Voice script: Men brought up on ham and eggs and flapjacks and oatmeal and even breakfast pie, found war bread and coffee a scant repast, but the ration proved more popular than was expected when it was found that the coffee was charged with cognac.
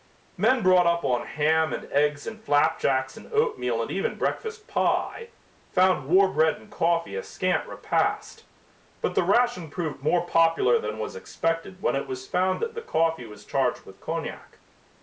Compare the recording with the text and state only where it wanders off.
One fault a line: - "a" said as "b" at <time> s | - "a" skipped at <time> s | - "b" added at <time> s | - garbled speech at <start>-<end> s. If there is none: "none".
none